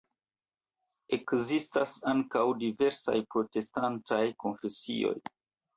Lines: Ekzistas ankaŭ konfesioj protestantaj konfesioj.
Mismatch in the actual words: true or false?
true